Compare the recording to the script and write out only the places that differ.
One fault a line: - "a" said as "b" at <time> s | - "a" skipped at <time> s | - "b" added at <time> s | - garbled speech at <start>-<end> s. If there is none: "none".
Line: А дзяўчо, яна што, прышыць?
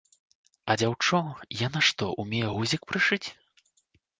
- "умее гузік" added at 2.2 s